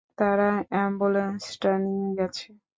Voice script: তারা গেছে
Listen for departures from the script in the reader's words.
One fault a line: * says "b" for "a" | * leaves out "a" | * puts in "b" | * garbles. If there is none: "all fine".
* puts in "অ্যাম্বুলেন্সটা নিয়ে"